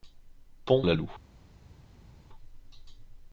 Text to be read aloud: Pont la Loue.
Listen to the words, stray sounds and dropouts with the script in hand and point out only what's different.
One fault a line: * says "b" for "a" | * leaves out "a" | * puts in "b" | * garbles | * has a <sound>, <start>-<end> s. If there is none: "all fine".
all fine